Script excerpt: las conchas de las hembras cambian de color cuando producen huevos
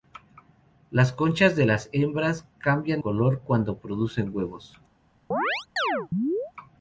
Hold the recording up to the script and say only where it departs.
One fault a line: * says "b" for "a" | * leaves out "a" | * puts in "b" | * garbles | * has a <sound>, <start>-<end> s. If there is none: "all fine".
* leaves out "de"
* has a chirp, 5.3-6.5 s